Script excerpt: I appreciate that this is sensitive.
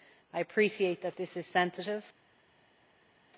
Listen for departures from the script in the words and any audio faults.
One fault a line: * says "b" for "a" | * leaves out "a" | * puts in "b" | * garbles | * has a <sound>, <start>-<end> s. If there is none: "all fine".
all fine